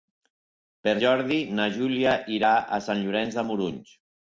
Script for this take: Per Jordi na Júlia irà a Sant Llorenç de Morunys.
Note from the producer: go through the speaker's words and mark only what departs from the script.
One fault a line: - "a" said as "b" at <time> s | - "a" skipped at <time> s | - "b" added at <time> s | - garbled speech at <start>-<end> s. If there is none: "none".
none